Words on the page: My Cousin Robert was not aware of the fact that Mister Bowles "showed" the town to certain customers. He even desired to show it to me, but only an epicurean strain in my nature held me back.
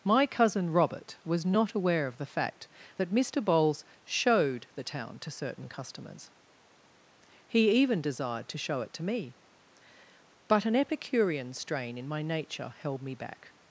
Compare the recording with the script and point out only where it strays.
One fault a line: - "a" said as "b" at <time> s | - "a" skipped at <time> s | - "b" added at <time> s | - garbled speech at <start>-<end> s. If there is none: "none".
- "only" skipped at 10.6 s